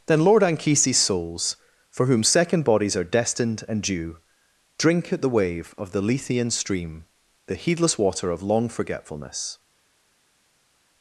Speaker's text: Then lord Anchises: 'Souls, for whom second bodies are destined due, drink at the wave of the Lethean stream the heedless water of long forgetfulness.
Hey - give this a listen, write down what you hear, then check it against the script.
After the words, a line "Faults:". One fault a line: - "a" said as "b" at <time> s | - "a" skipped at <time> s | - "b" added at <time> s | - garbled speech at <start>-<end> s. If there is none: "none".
Then lord Anchises: 'Souls, for whom second bodies are destined and due, drink at the wave of the Lethean stream the heedless water of long forgetfulness.
Faults:
- "and" added at 3.7 s